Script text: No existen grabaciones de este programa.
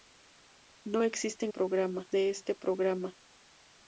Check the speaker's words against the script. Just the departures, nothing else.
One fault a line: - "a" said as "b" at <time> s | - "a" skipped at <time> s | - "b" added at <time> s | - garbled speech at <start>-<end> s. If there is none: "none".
- "grabaciones" said as "programa" at 1.5 s